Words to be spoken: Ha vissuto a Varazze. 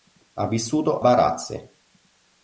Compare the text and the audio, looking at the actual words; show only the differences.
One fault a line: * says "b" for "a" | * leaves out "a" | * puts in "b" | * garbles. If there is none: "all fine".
* leaves out "a"